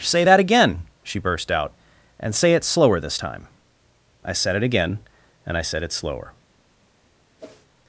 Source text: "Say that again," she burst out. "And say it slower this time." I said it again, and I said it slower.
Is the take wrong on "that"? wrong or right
right